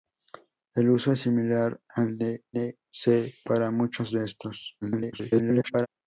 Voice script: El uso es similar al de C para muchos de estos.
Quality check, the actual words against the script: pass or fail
fail